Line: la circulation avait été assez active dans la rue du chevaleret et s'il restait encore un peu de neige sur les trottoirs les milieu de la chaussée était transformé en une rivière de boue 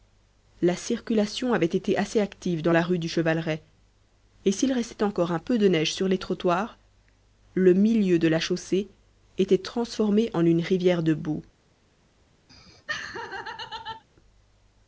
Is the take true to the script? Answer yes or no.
no